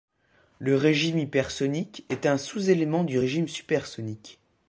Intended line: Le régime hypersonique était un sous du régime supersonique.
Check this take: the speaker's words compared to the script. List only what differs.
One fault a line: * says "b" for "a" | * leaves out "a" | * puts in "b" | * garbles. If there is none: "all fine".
* says "est" for "était"
* puts in "élément"